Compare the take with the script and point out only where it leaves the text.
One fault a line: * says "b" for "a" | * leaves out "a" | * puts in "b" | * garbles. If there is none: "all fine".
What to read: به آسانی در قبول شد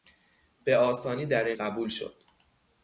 all fine